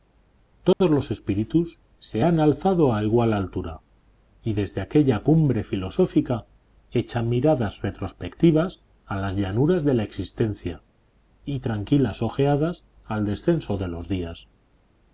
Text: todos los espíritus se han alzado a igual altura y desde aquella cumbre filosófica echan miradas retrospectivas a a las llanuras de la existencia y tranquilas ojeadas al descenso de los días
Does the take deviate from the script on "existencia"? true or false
false